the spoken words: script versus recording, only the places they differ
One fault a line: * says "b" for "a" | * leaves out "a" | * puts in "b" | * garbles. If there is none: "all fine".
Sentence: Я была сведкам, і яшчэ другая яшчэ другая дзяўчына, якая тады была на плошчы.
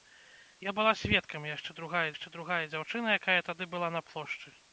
all fine